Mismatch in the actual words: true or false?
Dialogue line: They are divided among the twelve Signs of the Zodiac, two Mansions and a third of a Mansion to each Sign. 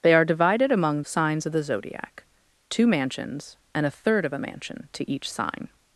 true